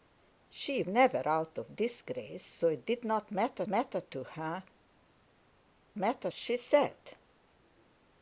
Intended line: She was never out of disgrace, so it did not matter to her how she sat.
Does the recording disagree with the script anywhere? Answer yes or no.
yes